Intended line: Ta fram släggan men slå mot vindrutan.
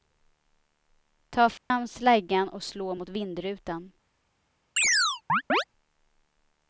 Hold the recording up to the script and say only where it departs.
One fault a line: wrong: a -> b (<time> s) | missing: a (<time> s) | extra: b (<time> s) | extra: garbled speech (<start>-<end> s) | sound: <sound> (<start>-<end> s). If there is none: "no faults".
sound: dropout (1.6-1.7 s)
wrong: men -> och (2.5 s)
sound: chirp (4.8-5.6 s)